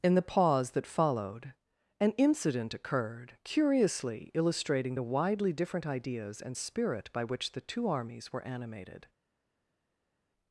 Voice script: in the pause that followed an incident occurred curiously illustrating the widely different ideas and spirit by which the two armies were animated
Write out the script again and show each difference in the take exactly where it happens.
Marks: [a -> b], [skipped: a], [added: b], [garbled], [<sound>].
in the pause that followed an incident occurred curiously illustrating the widely different ideas and spirit by which the two armies were animated